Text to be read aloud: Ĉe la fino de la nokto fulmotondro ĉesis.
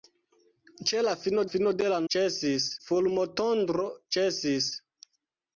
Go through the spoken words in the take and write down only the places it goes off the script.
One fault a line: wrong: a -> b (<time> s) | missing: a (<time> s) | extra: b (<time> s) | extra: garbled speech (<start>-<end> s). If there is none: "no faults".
extra: fino (1.5 s)
wrong: nokto -> ĉesis (2.1 s)